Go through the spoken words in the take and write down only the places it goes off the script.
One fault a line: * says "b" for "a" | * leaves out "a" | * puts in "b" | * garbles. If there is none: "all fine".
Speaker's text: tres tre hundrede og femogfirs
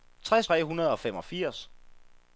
all fine